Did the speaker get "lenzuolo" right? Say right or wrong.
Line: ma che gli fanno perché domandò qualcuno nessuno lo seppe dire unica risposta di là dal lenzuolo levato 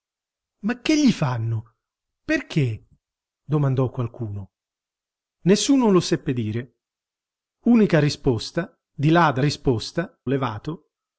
wrong